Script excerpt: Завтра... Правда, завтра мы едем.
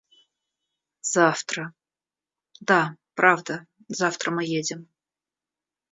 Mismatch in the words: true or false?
true